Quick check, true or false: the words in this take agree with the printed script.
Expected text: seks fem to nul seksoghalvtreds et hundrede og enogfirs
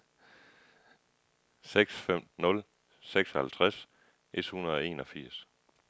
false